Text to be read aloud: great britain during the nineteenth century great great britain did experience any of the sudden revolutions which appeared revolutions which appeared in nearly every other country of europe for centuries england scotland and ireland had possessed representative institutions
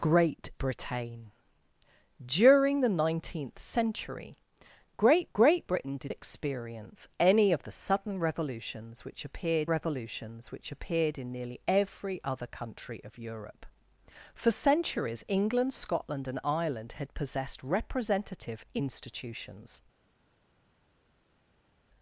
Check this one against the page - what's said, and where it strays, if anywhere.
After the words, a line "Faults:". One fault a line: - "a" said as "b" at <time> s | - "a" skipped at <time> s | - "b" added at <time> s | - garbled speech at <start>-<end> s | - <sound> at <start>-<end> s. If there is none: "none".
great britain during the nineteenth century great great britain did experience any of the sudden revolutions which appeared revolutions which appeared in nearly every other country of europe for centuries england scotland and ireland had possessed representative institutions
Faults:
none